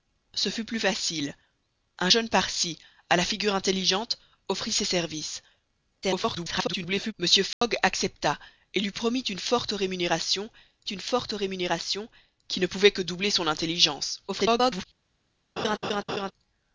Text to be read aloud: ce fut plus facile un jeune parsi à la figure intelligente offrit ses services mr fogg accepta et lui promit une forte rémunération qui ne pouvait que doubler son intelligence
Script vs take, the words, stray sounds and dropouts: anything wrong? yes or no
yes